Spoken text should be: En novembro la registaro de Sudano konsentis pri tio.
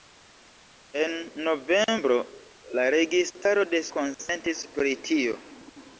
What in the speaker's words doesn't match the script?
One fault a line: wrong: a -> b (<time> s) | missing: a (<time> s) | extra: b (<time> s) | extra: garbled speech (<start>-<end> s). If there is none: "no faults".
missing: Sudano (3.8 s)